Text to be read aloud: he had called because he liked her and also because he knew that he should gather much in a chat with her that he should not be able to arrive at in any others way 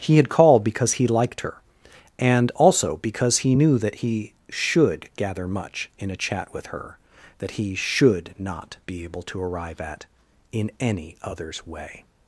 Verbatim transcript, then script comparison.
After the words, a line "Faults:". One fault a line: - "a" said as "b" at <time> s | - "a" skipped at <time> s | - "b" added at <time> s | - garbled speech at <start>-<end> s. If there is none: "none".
he had called because he liked her and also because he knew that he should gather much in a chat with her that he should not be able to arrive at in any others way
Faults:
none